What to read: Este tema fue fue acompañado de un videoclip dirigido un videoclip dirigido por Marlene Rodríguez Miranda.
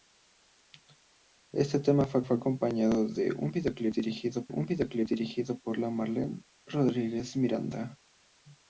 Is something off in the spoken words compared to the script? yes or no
no